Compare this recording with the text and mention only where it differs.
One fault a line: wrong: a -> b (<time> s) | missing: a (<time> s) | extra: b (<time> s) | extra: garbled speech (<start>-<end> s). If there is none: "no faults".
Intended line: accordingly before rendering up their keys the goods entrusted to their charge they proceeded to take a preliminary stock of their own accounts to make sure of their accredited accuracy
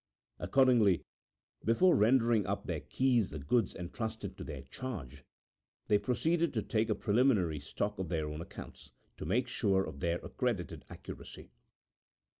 no faults